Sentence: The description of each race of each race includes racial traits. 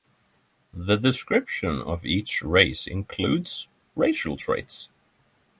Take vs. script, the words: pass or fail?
fail